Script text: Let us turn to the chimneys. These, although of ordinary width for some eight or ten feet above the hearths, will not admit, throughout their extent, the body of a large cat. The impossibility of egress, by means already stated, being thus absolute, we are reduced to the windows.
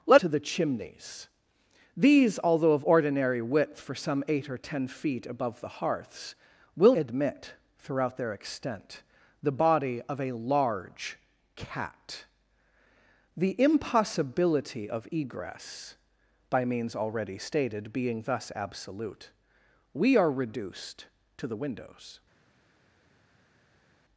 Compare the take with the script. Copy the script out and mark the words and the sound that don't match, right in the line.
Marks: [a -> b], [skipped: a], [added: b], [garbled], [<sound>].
Let [skipped: us turn] to the chimneys. These, although of ordinary width for some eight or ten feet above the hearths, will [skipped: not] admit, throughout their extent, the body of a large cat. The impossibility of egress, by means already stated, being thus absolute, we are reduced to the windows.